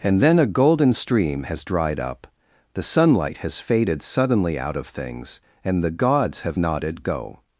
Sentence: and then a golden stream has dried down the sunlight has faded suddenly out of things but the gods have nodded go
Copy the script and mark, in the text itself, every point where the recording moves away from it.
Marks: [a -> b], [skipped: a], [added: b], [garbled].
and then a golden stream has dried [down -> up] the sunlight has faded suddenly out of things [but -> and] the gods have nodded go